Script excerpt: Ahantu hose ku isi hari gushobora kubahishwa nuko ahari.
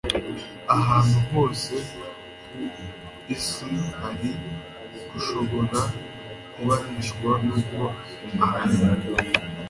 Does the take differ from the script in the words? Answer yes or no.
no